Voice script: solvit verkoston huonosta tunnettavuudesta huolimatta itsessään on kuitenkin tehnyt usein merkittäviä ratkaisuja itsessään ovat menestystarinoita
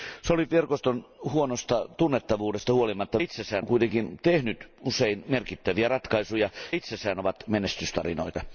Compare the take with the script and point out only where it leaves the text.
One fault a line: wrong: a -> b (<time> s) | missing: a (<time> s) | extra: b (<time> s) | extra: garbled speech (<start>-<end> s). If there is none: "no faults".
no faults